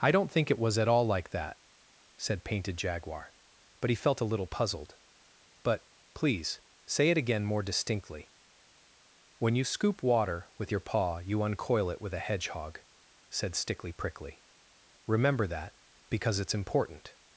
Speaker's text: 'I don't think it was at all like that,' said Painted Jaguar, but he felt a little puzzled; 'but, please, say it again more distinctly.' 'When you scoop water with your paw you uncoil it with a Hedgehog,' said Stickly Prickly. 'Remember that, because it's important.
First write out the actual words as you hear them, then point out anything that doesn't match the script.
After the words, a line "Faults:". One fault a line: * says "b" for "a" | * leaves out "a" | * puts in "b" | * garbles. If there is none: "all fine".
'I don't think it was at all like that,' said Painted Jaguar, but he felt a little puzzled; 'but, please, say it again more distinctly.' 'When you scoop water with your paw you uncoil it with a Hedgehog,' said Stickly Prickly. 'Remember that, because it's important.
Faults:
all fine